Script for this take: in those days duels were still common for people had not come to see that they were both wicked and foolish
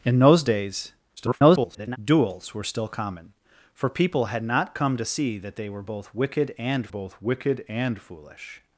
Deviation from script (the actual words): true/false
true